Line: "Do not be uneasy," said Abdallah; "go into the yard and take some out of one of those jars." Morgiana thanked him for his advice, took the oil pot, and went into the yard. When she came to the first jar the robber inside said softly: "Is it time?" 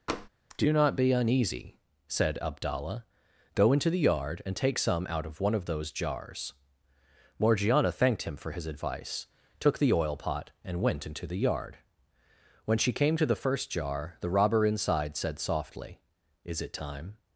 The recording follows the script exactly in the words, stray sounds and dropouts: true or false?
false